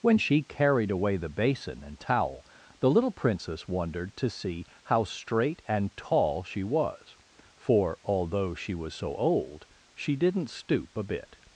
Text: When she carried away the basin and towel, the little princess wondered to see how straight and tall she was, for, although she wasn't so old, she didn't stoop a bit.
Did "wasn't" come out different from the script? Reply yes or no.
yes